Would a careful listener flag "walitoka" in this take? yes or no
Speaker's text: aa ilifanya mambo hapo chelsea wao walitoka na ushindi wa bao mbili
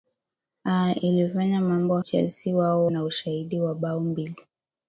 yes